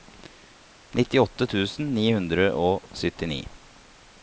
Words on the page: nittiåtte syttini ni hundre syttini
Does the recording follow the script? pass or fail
fail